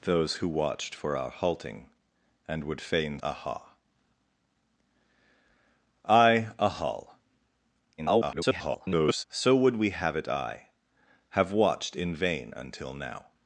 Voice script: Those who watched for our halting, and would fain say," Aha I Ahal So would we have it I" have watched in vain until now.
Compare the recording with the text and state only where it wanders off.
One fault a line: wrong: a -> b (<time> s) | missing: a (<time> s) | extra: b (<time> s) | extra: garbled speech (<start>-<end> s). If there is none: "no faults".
missing: say (3.2 s)
extra: garbled speech (8.0-9.2 s)